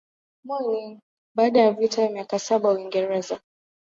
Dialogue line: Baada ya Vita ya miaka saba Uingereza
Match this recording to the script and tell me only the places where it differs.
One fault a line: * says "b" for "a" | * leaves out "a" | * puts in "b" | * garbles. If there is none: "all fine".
all fine